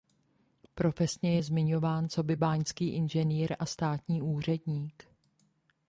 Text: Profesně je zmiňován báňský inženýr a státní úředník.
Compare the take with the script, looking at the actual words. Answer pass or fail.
fail